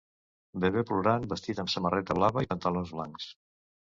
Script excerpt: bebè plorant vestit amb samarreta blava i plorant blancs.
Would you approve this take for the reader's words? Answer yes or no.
no